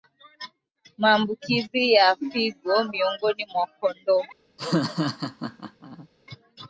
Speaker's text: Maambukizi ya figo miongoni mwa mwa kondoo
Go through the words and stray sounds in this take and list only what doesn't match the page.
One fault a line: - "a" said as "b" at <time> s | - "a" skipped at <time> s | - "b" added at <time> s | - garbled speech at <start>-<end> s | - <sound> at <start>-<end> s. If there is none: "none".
- "mwa" skipped at 3.7 s
- laugh at 4.6-6.1 s